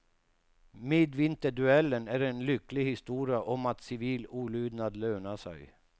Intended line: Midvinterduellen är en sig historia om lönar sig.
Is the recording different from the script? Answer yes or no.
yes